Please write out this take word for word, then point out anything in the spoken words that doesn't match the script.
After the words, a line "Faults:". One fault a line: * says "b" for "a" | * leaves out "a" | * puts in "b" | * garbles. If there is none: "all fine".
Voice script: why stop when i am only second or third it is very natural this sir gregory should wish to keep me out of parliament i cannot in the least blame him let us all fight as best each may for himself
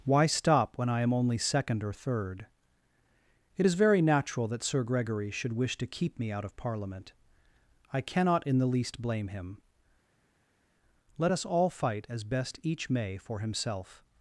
why stop when i am only second or third it is very natural that sir gregory should wish to keep me out of parliament i cannot in the least blame him let us all fight as best each may for himself
Faults:
* says "that" for "this"